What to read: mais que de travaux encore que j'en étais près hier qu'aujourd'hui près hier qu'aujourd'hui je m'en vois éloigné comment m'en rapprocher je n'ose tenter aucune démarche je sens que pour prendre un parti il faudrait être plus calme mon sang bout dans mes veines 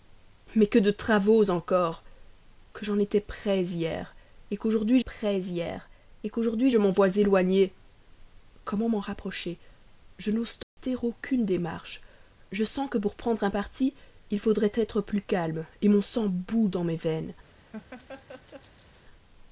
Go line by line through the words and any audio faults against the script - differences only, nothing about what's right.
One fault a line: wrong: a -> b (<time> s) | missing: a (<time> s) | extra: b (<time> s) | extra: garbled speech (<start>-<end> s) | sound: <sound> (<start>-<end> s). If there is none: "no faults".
sound: dropout (10.6-10.8 s)
sound: laugh (17.7-19.1 s)